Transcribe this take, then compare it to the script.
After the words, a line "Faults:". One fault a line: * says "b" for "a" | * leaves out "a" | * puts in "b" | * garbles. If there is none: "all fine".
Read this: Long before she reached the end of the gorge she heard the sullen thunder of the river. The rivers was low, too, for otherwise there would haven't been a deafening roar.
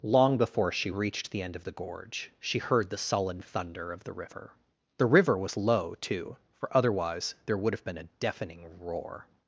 Long before she reached the end of the gorge she heard the sullen thunder of the river. The river was low, too, for otherwise there would have been a deafening roar.
Faults:
* says "river" for "rivers"
* says "have" for "haven't"